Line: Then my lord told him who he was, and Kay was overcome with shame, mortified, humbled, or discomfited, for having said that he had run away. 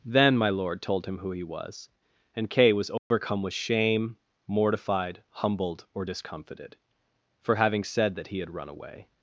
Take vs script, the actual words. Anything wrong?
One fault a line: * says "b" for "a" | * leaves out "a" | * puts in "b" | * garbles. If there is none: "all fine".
all fine